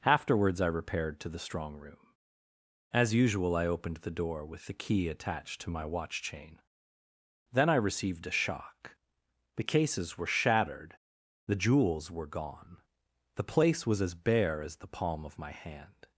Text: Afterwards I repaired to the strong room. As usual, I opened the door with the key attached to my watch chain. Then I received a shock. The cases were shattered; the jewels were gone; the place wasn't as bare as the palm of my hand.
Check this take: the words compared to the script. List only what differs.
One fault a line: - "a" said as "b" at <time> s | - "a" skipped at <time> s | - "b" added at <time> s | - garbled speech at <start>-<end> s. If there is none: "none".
- "wasn't" said as "was" at 13.9 s